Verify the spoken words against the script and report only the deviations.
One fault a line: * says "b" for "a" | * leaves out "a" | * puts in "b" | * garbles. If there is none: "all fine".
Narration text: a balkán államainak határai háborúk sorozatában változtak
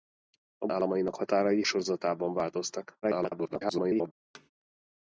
* leaves out "balkán"
* leaves out "háborúk"
* garbles